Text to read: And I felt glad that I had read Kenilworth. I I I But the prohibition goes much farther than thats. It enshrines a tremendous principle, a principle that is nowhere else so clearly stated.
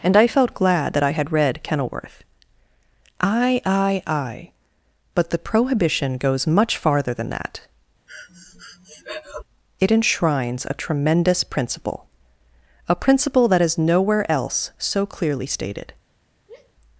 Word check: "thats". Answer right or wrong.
wrong